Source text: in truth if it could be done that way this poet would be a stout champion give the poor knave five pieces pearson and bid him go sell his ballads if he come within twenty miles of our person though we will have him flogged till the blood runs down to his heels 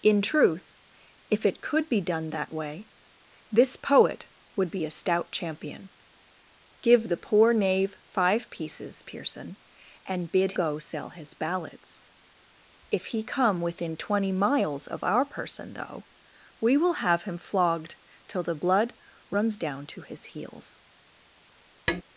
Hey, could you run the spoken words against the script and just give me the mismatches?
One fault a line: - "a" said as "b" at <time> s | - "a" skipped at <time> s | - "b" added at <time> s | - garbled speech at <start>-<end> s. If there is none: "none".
- "him" skipped at 10.5 s